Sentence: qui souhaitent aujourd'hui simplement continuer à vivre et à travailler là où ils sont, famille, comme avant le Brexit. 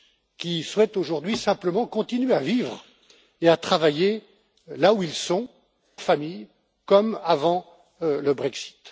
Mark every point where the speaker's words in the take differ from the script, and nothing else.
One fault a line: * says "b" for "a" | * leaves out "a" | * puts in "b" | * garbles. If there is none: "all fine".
all fine